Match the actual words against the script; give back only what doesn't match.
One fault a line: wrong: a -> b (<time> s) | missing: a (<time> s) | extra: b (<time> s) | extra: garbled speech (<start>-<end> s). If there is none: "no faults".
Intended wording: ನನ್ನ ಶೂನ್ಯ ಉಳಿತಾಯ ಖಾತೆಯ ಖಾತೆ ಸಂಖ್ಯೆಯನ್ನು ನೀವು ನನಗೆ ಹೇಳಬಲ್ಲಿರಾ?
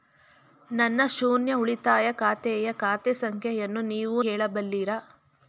missing: ನನಗೆ (4.2 s)